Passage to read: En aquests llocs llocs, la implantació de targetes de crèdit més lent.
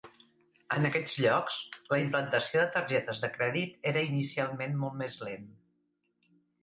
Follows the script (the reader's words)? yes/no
no